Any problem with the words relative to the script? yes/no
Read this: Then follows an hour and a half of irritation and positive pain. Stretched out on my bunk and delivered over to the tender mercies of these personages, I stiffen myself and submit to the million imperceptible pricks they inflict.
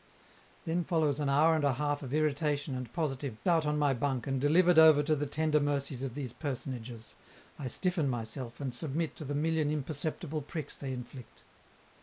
yes